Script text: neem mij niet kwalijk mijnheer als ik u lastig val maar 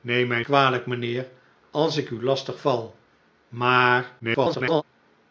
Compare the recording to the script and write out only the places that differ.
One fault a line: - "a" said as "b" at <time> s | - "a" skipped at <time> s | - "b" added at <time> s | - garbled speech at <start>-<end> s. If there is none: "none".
- "niet" skipped at 0.4 s
- garbled speech at 4.2-4.8 s